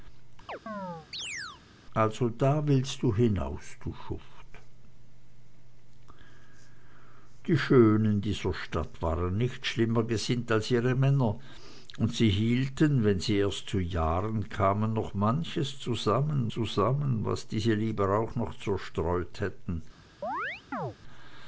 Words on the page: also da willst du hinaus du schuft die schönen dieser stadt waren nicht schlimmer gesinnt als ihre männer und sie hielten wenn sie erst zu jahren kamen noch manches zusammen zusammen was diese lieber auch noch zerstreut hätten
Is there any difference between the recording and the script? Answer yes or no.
no